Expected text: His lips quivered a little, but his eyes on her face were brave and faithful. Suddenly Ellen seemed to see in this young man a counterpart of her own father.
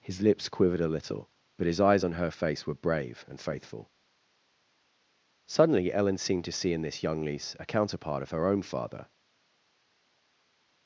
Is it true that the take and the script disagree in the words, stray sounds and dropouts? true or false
true